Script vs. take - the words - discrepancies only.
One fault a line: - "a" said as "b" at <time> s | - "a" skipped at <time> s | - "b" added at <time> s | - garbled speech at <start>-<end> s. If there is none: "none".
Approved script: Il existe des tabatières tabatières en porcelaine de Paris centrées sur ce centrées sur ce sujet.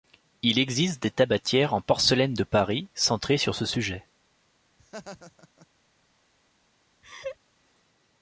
- "tabatières" skipped at 1.8 s
- "centrées sur ce" skipped at 3.7 s